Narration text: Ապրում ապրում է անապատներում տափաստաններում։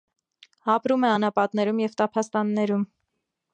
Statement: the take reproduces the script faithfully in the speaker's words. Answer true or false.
false